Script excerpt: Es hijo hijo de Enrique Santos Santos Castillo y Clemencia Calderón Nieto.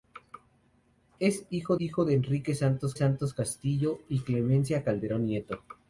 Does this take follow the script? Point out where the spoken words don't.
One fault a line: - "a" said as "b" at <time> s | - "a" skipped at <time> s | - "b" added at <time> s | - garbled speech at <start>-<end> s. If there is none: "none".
none